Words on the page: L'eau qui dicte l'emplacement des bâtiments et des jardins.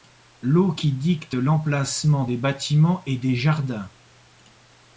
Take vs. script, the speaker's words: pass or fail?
pass